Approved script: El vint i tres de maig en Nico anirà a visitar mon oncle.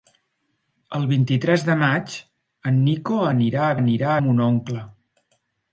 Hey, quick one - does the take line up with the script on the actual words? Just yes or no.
no